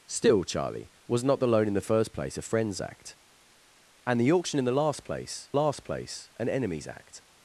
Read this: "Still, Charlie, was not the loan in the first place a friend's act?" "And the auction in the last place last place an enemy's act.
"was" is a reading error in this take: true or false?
false